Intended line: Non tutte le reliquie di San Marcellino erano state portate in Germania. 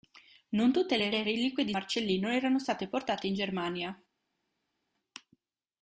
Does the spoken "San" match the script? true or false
false